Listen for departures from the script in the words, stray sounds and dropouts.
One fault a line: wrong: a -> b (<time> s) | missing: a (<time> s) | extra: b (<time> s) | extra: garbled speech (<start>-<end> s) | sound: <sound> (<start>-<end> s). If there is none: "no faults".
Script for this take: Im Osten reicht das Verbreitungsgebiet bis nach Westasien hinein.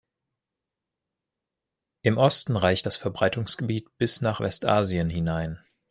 no faults